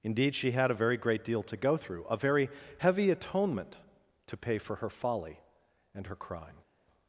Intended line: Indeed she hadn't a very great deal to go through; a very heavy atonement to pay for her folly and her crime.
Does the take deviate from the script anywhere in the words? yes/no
yes